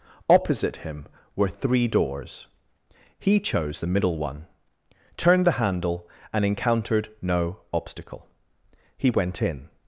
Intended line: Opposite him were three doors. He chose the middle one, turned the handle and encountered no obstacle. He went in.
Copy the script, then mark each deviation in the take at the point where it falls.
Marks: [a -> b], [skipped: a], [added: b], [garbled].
Opposite him were three doors. He chose the middle one, turned the handle and encountered no obstacle. He went in.